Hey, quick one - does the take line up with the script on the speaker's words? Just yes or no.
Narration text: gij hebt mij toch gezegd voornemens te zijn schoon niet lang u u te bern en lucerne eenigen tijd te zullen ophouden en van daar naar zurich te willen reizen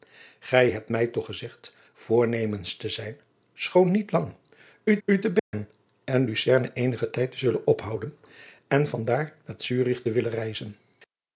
yes